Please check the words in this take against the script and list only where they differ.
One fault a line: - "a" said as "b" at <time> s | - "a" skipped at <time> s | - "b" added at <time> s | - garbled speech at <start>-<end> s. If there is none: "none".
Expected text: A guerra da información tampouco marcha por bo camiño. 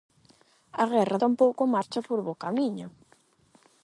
- "da información" skipped at 1.2 s